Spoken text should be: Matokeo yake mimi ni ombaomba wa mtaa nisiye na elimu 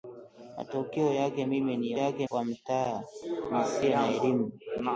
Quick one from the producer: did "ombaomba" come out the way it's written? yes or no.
no